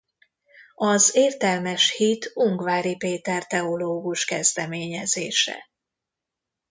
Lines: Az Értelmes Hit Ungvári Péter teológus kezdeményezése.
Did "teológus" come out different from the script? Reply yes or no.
no